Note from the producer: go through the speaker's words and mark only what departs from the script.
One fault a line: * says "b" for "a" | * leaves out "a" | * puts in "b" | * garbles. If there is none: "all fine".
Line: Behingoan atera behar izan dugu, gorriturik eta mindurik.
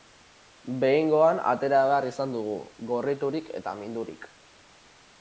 all fine